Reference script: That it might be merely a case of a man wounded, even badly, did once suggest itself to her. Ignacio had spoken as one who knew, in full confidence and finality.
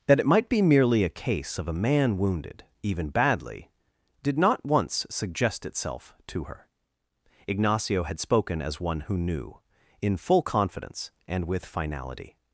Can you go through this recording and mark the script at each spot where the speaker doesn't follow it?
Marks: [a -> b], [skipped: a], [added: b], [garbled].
That it might be merely a case of a man wounded, even badly, did [added: not] once suggest itself to her. Ignacio had spoken as one who knew, in full confidence and [added: with] finality.